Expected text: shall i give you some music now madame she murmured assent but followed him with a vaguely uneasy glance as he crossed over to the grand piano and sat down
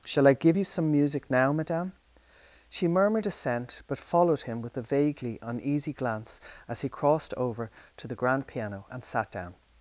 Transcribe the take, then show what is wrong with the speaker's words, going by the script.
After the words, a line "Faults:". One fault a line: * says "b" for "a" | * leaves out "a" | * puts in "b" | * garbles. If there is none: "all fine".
shall i give you some music now madame she murmured assent but followed him with a vaguely uneasy glance as he crossed over to the grand piano and sat down
Faults:
all fine